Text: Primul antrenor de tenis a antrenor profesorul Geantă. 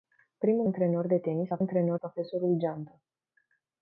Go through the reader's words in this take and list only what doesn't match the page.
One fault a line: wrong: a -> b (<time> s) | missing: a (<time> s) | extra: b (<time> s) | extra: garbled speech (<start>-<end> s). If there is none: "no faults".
no faults